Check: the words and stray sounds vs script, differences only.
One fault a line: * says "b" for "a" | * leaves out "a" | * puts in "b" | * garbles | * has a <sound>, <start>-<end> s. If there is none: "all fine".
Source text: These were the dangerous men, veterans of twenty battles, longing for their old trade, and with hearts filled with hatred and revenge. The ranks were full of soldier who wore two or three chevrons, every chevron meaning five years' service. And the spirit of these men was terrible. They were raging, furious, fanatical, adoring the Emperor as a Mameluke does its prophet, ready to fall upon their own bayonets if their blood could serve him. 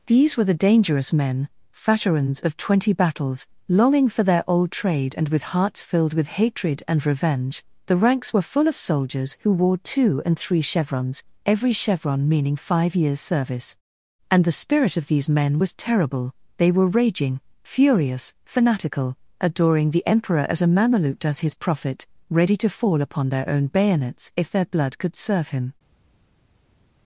* says "soldiers" for "soldier"
* says "and" for "or"
* says "his" for "its"